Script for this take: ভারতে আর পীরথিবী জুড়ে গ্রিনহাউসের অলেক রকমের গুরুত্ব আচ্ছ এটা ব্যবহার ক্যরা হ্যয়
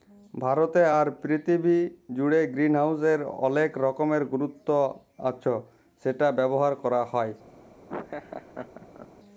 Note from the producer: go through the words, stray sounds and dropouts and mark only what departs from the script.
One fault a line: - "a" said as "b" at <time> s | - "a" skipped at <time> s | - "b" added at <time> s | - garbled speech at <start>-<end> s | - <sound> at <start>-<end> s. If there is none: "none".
- "এটা" said as "সেটা" at 6.0 s
- laugh at 7.9-9.1 s